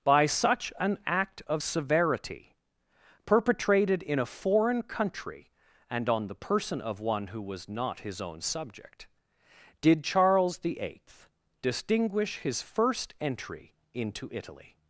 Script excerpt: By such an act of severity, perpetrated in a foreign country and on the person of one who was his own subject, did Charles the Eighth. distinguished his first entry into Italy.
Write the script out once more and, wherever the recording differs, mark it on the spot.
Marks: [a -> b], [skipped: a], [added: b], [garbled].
By such an act of severity, perpetrated in a foreign country and on the person of one who was [added: not] his own subject, did Charles the Eighth. [distinguished -> distinguish] his first entry into Italy.